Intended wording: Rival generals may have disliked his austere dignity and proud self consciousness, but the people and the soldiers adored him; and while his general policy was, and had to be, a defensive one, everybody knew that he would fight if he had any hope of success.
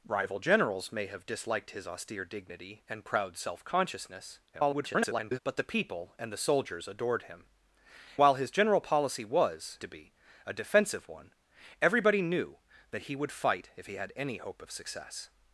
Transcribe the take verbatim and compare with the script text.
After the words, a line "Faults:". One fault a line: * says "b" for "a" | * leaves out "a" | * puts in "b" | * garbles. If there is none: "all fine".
Rival generals may have disliked his austere dignity and proud self consciousness, [garbled] but the people and the soldiers adored him; while his general policy was, to be, a defensive one, everybody knew that he would fight if he had any hope of success.
Faults:
* garbles
* leaves out "and"
* leaves out "and had"